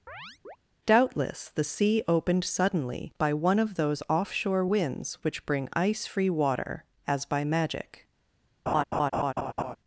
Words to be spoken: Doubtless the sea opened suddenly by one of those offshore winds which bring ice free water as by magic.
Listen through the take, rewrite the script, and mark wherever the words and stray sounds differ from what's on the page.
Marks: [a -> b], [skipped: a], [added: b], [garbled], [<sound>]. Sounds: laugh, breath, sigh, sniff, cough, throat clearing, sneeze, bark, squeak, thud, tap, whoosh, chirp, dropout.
[chirp] Doubtless the sea opened suddenly by one of those offshore winds which bring ice free water as by magic. [laugh]